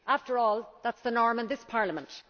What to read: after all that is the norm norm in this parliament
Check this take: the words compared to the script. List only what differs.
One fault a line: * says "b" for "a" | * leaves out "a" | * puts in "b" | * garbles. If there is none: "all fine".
* leaves out "norm"